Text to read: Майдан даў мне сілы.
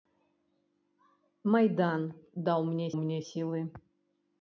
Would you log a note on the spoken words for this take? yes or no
yes